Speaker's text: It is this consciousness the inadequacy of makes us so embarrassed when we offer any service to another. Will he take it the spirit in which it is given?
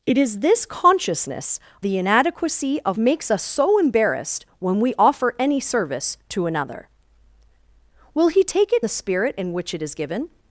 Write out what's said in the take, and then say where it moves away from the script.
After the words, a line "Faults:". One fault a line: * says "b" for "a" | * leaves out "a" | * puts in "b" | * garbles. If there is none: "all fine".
It is this consciousness the inadequacy of makes us so embarrassed when we offer any service to another. Will he take it the spirit in which it is given?
Faults:
all fine